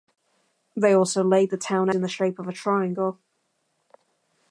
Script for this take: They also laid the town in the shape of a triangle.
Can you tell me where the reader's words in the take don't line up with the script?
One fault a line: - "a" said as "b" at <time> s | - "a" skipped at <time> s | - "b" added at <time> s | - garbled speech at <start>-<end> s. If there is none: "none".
none